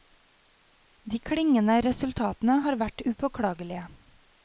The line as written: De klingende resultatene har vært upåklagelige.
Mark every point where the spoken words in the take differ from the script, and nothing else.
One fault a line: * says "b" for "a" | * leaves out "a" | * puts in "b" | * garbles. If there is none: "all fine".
all fine